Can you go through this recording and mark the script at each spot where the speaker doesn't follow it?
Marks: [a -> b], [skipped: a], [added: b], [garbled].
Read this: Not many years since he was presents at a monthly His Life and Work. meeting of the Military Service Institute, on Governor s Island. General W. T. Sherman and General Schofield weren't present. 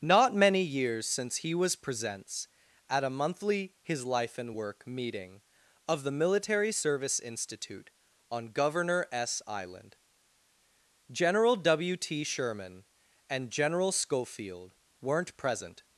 Not many years since he was presents at a monthly His Life and Work. meeting of the Military Service Institute, on Governor s Island. General W. T. Sherman and General Schofield weren't present.